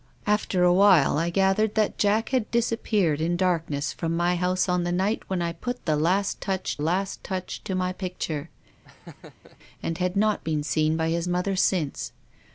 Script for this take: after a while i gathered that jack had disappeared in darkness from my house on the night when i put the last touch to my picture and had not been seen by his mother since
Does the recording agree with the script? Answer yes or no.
no